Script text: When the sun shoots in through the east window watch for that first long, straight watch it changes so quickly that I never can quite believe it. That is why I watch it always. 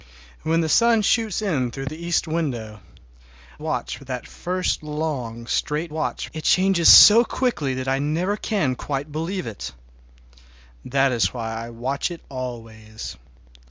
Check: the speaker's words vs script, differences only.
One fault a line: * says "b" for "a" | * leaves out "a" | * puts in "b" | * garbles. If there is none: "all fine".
all fine